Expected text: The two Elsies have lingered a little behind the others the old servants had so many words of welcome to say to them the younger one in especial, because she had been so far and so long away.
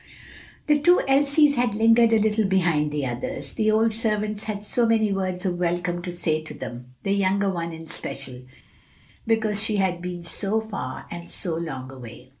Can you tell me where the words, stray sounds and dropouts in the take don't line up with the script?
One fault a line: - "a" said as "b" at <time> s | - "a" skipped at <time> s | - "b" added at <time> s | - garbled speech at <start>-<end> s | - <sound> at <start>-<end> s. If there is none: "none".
- "have" said as "had" at 1.5 s